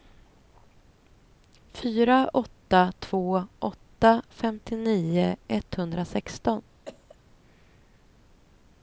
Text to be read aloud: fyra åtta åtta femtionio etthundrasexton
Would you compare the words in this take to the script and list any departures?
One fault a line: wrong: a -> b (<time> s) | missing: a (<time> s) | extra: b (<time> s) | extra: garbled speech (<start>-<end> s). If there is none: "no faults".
extra: två (3.0 s)